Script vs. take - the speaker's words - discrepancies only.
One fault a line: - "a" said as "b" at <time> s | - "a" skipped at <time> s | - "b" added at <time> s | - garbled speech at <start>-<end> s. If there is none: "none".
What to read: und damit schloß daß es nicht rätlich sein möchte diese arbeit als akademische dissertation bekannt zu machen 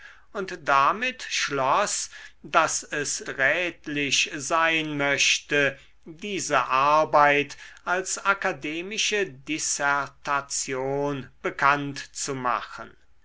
- "nicht" skipped at 3.2 s